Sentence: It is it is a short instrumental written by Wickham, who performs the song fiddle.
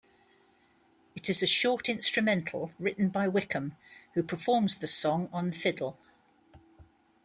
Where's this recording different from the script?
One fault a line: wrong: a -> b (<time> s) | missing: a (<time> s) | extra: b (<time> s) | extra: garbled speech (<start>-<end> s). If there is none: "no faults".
missing: it is (1.4 s)
extra: on (5.3 s)